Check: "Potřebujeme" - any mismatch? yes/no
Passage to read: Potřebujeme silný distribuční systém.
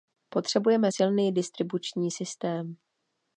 no